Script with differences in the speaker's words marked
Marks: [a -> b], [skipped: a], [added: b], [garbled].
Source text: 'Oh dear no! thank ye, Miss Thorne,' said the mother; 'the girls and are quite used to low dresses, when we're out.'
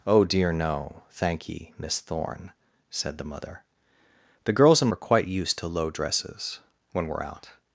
'Oh dear no! thank ye, Miss Thorne,' said the mother; 'the girls and are quite used to low dresses, when we're out.'